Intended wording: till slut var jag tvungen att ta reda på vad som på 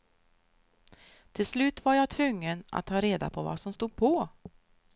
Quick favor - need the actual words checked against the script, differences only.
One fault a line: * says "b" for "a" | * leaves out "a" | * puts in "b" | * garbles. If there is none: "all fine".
* puts in "stod"